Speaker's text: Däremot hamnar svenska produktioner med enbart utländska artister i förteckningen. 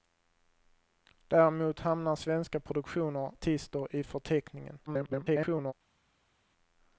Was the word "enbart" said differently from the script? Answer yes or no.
yes